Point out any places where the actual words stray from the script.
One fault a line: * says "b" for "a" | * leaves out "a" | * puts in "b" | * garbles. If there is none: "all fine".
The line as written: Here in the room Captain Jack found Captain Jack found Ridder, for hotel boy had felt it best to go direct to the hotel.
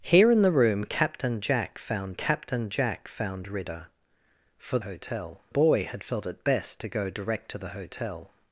all fine